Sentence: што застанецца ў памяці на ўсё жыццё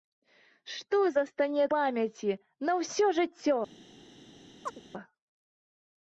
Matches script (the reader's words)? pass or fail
fail